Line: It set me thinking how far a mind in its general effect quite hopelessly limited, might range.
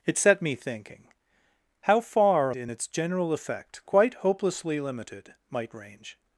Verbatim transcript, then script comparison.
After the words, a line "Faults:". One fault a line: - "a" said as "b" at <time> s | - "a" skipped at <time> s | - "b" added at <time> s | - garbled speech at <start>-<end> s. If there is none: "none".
It set me thinking how far a in its general effect quite hopelessly limited, might range.
Faults:
- "mind" skipped at 2.5 s